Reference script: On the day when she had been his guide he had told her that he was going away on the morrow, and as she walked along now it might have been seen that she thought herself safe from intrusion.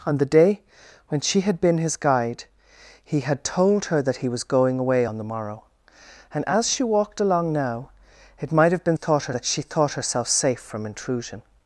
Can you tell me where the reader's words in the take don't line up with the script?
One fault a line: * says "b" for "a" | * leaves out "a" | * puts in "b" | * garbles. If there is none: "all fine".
* says "thought" for "seen"